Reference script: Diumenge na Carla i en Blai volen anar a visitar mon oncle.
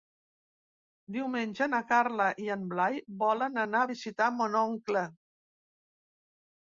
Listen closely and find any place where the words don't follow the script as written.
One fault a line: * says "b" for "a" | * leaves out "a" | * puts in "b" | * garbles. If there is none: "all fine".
all fine